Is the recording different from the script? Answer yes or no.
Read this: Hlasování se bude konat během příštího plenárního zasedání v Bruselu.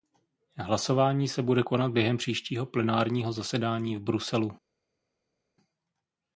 no